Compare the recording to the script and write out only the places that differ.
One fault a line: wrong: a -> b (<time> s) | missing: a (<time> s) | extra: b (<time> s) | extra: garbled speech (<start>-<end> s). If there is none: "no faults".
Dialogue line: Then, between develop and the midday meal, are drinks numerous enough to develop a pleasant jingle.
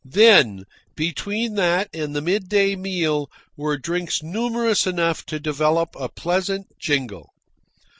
wrong: develop -> that (1.6 s)
wrong: are -> were (3.5 s)